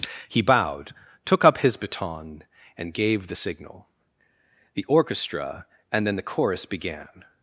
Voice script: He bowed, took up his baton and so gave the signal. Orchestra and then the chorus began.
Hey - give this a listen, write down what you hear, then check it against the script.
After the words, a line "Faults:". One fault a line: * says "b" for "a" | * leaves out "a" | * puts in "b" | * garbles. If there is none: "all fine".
He bowed, took up his baton and gave the signal. The orchestra and then the chorus began.
Faults:
* leaves out "so"
* puts in "The"